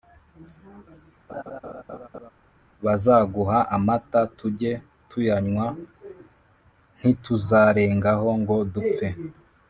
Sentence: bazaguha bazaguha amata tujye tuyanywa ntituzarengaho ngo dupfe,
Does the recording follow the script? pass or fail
fail